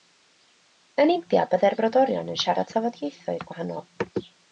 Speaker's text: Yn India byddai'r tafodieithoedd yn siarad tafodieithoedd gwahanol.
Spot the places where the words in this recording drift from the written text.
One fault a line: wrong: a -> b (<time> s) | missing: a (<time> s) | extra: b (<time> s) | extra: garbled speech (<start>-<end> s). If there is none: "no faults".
wrong: tafodieithoedd -> brodorion (1.8 s)